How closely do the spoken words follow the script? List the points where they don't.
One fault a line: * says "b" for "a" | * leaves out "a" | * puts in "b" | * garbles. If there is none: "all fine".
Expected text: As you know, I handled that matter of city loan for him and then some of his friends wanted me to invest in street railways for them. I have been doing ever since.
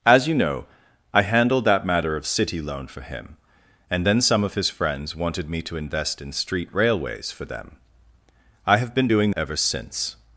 all fine